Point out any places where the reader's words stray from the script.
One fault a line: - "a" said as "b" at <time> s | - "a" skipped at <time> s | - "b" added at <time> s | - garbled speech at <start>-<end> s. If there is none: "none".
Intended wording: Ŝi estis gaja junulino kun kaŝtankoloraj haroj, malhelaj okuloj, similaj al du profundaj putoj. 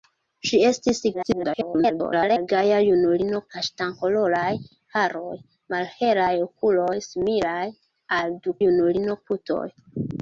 - garbled speech at 1.1-2.5 s
- "kun" skipped at 3.4 s
- "profundaj" said as "junulino" at 8.6 s